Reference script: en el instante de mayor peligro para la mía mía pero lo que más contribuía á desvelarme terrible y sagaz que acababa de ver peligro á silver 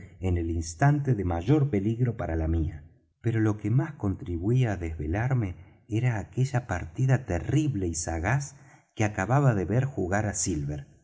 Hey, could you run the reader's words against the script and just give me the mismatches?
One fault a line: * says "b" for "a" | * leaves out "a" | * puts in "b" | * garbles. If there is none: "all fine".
* leaves out "mía"
* puts in "era aquella partida"
* says "jugar" for "peligro"